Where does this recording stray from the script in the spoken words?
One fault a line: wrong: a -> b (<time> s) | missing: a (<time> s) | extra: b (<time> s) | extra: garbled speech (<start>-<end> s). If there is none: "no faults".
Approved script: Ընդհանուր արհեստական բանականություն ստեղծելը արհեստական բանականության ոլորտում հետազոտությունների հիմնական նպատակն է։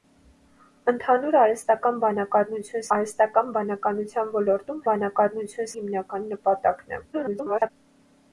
missing: ստեղծելը (2.9 s)
wrong: հետազոտությունների -> բանականություն (4.9 s)
extra: garbled speech (7.1-7.7 s)